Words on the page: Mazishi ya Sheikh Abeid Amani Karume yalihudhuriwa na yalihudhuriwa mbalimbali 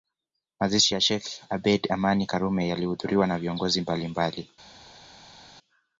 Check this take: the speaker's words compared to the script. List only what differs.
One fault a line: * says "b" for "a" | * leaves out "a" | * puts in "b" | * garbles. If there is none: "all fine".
* says "viongozi" for "yalihudhuriwa"